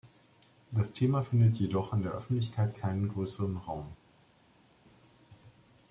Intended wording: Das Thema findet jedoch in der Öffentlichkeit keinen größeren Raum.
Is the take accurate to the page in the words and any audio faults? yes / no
yes